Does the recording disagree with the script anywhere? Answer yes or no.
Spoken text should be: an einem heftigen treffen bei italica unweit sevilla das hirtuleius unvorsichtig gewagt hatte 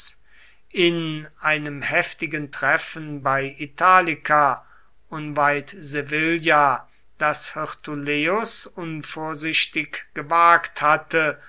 yes